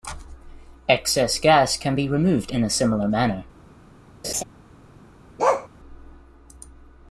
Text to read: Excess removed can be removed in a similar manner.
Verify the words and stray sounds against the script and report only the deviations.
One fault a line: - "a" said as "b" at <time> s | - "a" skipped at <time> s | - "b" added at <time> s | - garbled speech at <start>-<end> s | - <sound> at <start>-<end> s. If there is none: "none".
- "removed" said as "gas" at 1.4 s
- laugh at 4.2-4.4 s
- bark at 5.4-5.7 s